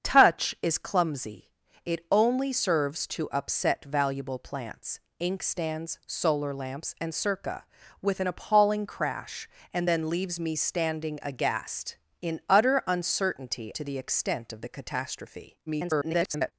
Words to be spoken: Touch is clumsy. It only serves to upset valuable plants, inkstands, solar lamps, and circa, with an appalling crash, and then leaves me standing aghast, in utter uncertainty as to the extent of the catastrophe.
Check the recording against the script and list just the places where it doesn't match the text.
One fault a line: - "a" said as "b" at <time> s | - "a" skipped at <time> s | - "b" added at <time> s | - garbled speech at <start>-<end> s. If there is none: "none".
- "as" skipped at 13.7 s
- garbled speech at 15.7-16.5 s